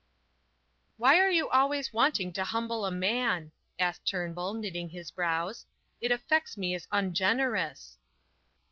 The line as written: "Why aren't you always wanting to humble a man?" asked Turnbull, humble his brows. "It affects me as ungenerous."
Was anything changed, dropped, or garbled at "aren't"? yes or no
yes